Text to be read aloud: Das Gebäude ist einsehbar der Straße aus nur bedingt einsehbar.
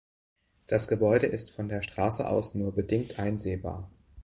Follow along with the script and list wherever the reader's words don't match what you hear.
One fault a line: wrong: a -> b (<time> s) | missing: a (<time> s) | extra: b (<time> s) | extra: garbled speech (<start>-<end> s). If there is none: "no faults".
wrong: einsehbar -> von (1.5 s)